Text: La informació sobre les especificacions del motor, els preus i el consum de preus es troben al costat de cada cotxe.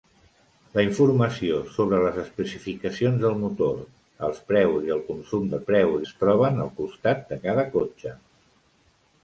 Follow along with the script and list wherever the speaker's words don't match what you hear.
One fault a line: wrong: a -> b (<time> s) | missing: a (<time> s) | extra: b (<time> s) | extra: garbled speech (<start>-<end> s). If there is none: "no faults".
no faults